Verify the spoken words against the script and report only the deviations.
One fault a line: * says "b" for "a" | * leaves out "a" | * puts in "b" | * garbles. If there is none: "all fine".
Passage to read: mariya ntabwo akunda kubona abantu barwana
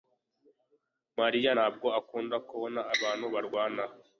all fine